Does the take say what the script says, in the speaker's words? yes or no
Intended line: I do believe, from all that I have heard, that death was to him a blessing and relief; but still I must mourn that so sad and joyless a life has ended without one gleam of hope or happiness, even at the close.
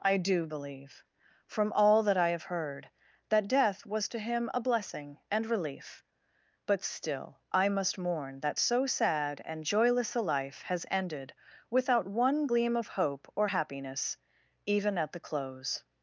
yes